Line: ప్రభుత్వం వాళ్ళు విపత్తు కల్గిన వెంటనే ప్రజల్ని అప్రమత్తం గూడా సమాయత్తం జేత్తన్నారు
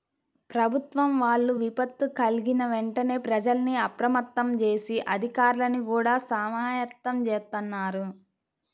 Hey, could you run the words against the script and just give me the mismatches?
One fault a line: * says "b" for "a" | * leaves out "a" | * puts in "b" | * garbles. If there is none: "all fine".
* puts in "జేసి అధికార్లని"